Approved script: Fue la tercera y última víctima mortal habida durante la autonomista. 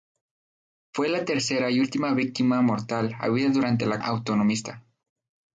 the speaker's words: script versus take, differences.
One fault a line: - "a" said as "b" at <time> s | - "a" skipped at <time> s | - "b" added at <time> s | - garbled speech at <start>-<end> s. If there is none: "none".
none